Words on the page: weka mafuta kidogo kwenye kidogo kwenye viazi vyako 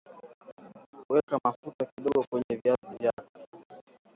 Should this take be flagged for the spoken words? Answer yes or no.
yes